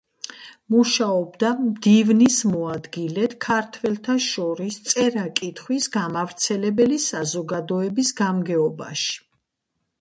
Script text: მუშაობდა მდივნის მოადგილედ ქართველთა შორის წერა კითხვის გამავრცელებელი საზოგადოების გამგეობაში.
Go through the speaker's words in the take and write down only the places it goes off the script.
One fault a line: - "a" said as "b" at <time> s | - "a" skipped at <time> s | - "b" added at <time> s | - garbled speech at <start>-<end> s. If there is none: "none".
none